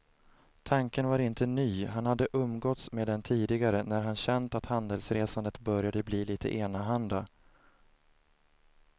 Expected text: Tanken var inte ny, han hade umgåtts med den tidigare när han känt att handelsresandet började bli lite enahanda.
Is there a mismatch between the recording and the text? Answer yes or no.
no